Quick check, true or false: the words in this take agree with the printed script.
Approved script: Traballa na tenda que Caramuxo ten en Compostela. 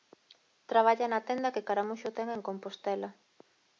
true